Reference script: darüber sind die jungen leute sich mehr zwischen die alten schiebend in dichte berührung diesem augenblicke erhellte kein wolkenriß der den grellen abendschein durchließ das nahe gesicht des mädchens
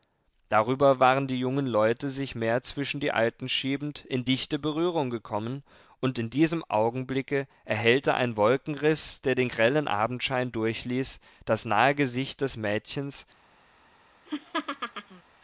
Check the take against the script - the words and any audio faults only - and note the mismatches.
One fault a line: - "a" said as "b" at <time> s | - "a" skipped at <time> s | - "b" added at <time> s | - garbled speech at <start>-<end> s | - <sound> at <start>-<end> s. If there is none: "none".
- "sind" said as "waren" at 1.0 s
- "gekommen und in" added at 5.1 s
- "kein" said as "ein" at 8.1 s
- laugh at 14.3-15.2 s